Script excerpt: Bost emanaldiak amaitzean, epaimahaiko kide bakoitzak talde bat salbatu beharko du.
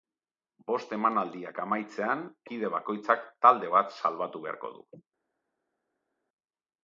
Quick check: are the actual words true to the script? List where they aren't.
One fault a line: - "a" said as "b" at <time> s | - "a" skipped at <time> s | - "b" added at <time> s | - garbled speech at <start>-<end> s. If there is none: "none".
- "epaimahaiko" skipped at 2.2 s